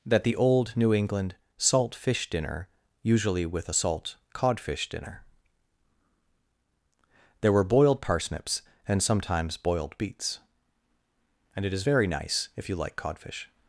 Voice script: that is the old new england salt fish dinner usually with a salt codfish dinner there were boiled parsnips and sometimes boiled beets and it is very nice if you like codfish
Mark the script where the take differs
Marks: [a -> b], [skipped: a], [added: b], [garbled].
that [skipped: is] the old new england salt fish dinner usually with a salt codfish dinner there were boiled parsnips and sometimes boiled beets and it is very nice if you like codfish